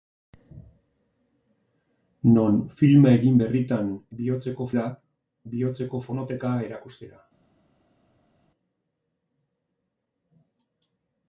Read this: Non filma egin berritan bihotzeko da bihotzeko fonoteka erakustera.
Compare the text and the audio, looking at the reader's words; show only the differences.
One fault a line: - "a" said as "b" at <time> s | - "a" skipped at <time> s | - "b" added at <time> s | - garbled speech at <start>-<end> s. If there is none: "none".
none